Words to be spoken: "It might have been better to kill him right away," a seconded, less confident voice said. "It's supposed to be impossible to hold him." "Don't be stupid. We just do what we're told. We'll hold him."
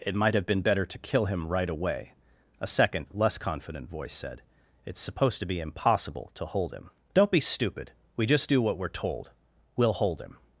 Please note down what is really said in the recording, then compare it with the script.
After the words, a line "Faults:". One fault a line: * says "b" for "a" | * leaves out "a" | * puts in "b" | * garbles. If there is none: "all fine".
"It might have been better to kill him right away," a second, less confident voice said. "It's supposed to be impossible to hold him." "Don't be stupid. We just do what we're told. We'll hold him."
Faults:
* says "second" for "seconded"